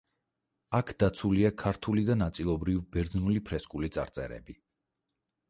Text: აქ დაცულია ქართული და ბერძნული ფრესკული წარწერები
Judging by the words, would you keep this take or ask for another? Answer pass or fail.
fail